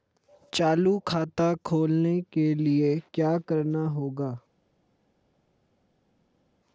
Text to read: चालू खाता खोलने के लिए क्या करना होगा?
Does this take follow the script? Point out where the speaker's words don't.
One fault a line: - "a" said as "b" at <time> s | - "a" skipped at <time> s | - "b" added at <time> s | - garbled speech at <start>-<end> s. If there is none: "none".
none